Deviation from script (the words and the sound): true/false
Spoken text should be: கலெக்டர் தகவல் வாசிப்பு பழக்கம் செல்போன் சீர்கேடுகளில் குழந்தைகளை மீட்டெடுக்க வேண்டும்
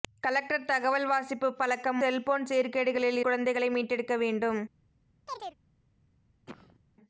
true